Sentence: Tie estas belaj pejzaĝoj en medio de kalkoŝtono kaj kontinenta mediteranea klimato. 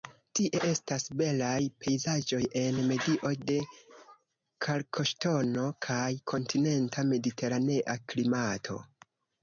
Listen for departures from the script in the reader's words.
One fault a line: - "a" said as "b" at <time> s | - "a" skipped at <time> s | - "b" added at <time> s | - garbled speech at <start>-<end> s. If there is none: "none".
none